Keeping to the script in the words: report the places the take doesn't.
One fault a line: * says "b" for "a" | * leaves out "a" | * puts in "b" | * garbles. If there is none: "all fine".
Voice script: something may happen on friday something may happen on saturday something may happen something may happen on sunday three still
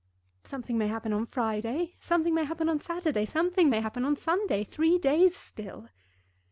* leaves out "something may happen"
* puts in "days"